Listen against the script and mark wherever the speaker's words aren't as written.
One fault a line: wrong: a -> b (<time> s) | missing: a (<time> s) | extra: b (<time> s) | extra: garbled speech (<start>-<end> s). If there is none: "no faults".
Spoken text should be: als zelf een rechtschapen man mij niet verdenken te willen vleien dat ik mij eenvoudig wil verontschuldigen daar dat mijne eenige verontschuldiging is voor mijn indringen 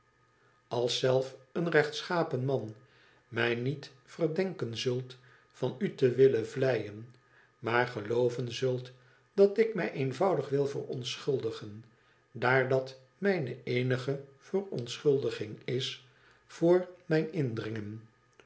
extra: zult van u (4.8 s)
extra: maar gelooven zult (7.6 s)